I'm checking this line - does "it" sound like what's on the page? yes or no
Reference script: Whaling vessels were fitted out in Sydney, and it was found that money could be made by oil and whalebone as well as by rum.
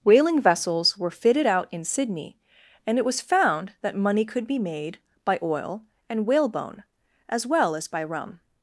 yes